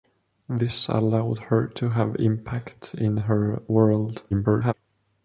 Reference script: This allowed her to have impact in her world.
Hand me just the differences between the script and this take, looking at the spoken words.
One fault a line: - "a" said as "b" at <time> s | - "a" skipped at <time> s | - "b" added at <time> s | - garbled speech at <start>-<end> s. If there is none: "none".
- garbled speech at 4.3-4.7 s